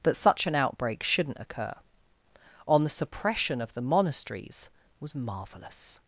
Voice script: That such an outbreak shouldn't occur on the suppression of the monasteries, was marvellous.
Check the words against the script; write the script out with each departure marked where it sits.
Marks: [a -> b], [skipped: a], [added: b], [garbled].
That such an outbreak shouldn't occur on the suppression of the monasteries, was marvellous.